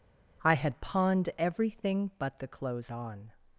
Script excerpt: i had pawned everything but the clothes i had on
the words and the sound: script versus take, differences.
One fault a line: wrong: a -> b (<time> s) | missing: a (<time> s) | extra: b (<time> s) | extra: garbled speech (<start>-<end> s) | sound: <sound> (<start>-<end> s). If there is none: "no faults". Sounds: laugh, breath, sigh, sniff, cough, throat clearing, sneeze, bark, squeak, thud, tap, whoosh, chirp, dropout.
missing: i had (2.9 s)